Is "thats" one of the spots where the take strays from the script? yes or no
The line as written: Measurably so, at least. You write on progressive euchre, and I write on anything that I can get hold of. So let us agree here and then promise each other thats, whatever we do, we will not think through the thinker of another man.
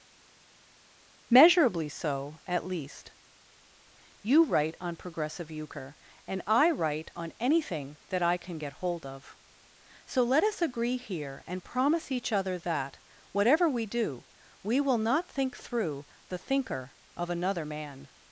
yes